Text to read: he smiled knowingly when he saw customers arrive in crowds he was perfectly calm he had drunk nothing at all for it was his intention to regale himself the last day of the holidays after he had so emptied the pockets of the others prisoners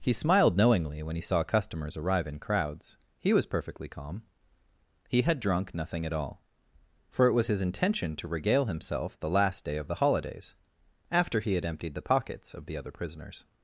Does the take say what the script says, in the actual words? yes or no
no